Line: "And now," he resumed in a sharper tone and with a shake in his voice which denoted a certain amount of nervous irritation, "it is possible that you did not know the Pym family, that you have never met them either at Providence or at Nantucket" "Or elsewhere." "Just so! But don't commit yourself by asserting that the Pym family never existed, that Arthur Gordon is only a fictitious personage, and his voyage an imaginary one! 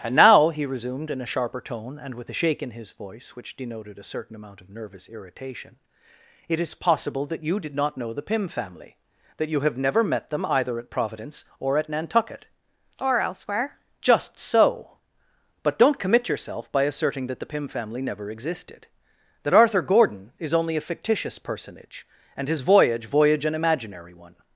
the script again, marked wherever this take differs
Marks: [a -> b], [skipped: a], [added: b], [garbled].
"And now," he resumed in a sharper tone and with a shake in his voice which denoted a certain amount of nervous irritation, "it is possible that you did not know the Pym family, that you have never met them either at Providence or at Nantucket" "Or elsewhere." "Just so! But don't commit yourself by asserting that the Pym family never existed, that Arthur Gordon is only a fictitious personage, and his voyage [added: voyage] an imaginary one!